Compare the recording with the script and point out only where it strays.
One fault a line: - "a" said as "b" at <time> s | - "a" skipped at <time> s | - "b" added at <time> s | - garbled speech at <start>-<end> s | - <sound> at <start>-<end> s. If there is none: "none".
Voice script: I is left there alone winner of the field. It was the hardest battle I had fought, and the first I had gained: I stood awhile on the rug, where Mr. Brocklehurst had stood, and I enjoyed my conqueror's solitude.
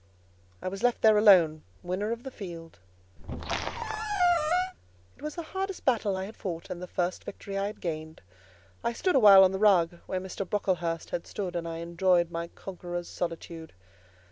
- "is" said as "was" at 0.7 s
- squeak at 3.2-4.7 s
- "victory" added at 7.2 s